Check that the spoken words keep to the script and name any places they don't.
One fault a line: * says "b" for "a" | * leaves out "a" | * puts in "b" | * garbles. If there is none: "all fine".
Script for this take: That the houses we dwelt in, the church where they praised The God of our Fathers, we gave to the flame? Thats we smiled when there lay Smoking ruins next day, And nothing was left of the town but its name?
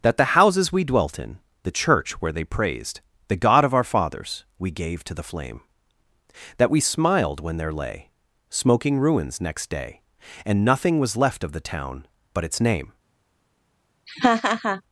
* says "That" for "Thats"